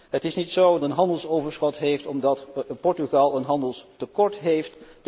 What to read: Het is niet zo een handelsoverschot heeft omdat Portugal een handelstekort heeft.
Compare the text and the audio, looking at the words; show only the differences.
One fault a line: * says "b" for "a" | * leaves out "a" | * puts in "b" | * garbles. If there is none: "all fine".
all fine